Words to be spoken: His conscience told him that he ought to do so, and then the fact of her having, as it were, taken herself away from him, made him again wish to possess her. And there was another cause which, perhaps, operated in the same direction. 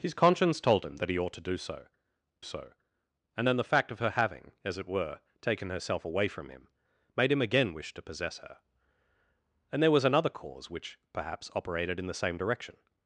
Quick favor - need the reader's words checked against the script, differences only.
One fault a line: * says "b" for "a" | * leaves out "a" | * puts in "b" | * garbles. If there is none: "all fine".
* puts in "so"